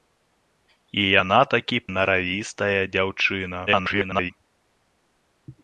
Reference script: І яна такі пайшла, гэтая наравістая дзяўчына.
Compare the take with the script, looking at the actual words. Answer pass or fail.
fail